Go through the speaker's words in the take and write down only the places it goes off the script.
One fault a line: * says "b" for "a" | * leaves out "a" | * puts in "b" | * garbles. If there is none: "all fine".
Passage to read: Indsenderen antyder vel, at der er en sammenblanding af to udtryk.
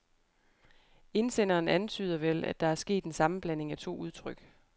* puts in "sket"